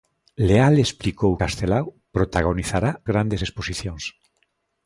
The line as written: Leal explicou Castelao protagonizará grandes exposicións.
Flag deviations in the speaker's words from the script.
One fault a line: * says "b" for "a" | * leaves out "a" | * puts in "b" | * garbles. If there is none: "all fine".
all fine